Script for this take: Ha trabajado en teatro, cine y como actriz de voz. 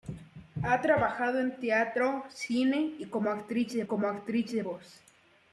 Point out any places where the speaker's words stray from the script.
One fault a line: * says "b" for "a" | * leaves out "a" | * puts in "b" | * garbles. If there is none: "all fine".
* puts in "como actriz de"